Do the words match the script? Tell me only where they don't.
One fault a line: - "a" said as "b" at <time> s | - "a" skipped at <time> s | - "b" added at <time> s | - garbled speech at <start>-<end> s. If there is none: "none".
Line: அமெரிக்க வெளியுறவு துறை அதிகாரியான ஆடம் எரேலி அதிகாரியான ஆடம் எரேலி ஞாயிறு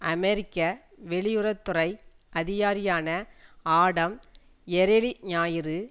- "அதிகாரியான ஆடம் எரேலி" skipped at 5.1 s